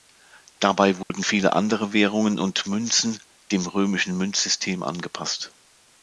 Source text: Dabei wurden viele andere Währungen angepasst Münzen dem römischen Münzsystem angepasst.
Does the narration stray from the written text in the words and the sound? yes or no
yes